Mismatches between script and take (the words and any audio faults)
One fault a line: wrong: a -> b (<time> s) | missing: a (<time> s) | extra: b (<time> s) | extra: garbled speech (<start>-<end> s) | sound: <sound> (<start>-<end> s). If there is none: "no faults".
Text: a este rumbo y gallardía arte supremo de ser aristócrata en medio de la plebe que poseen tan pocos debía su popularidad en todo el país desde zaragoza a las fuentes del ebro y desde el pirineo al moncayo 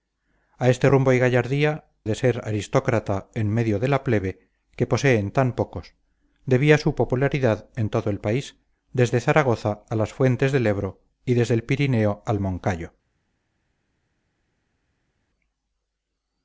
missing: arte supremo (1.8 s)